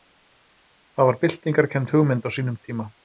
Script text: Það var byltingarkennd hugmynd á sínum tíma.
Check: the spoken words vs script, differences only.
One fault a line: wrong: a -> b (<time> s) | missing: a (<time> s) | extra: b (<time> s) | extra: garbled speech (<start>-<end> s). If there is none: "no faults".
no faults